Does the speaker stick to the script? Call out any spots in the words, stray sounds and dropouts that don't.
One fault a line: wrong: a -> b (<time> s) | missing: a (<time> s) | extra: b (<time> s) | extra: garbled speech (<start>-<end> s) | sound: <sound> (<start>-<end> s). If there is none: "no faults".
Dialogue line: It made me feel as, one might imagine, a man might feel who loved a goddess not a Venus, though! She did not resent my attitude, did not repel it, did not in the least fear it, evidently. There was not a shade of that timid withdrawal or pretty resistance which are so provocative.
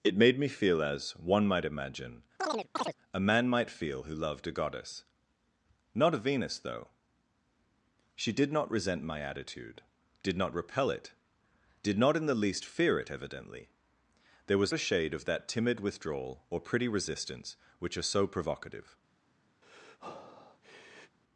sound: chirp (2.4-2.9 s)
missing: not (14.7 s)
sound: breath (19.6-21.2 s)